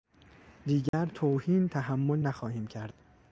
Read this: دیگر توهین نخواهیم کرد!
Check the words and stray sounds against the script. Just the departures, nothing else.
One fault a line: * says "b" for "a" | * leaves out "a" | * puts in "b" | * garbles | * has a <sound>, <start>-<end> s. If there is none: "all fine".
* has a dropout, 0.9-0.9 s
* puts in "تحمل"